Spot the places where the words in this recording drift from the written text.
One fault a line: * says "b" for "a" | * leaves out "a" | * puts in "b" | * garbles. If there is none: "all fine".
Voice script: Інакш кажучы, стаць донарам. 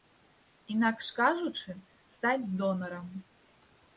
all fine